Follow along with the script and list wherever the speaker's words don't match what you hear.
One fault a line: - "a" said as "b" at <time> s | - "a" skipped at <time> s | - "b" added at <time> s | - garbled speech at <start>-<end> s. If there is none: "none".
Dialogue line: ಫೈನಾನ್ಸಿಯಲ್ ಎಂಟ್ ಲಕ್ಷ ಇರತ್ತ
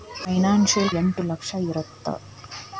none